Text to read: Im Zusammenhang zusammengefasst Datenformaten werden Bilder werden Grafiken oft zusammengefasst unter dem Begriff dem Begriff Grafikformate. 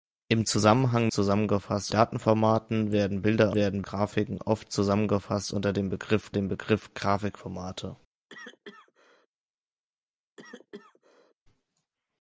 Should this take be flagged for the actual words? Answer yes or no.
no